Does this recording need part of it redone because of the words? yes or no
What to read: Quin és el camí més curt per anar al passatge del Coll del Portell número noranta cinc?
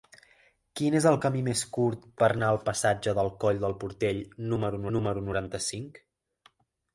yes